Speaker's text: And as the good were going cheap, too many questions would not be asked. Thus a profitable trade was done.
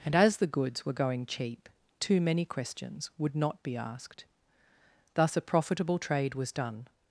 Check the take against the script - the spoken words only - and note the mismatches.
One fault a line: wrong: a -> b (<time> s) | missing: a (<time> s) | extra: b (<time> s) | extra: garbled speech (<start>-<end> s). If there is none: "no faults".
wrong: good -> goods (0.5 s)